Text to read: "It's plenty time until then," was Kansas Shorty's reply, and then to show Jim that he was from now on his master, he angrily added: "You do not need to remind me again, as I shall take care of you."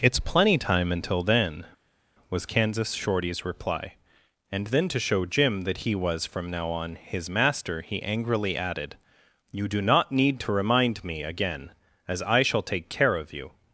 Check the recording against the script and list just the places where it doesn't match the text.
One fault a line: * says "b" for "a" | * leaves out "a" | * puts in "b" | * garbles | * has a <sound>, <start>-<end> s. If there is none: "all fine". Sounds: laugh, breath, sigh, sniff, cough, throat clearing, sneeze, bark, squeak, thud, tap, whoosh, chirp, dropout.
all fine